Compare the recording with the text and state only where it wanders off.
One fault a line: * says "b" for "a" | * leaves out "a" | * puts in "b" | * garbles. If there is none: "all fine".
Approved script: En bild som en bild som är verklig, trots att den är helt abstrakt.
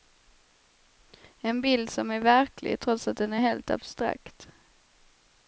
* leaves out "en bild som"